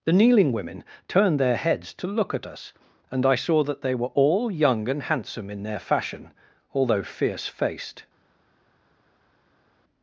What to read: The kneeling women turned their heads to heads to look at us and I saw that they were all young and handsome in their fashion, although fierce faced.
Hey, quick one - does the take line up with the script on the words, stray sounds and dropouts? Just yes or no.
no